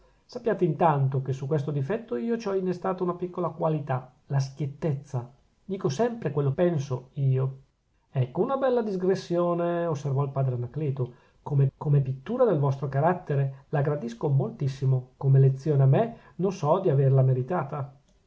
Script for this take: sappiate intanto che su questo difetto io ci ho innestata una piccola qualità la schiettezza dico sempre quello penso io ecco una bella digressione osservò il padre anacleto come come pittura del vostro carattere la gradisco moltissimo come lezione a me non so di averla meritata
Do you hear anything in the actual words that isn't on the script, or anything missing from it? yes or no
no